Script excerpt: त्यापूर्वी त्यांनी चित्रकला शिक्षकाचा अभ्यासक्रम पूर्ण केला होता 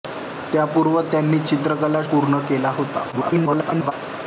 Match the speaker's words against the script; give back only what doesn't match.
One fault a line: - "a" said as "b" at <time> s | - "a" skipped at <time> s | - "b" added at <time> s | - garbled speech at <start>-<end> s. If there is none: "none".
- "शिक्षकाचा अभ्यासक्रम" skipped at 2.0 s
- garbled speech at 3.1-3.9 s